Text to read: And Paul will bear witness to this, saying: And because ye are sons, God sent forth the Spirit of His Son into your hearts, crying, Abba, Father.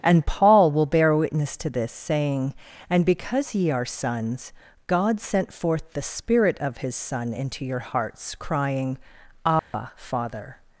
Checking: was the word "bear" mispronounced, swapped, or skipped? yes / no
no